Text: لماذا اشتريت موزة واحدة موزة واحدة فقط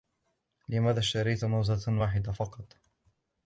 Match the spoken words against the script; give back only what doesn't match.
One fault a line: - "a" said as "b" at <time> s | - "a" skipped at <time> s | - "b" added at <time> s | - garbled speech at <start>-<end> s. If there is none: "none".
- "موزة واحدة" skipped at 2.3 s